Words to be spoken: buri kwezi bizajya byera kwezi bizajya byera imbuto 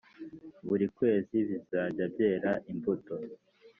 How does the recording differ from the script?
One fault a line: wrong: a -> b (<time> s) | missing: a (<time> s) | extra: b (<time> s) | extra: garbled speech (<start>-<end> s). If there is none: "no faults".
missing: kwezi bizajya byera (2.5 s)